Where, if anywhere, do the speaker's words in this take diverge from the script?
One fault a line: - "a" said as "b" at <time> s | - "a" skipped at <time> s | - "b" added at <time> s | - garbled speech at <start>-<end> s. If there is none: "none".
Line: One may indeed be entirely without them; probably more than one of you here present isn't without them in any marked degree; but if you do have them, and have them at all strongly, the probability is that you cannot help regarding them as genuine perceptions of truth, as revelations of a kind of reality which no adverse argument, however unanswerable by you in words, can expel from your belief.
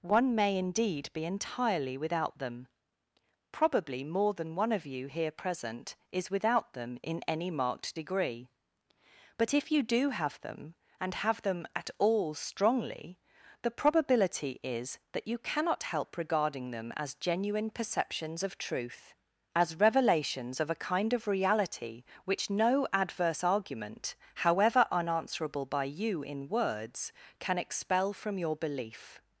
- "isn't" said as "is" at 6.1 s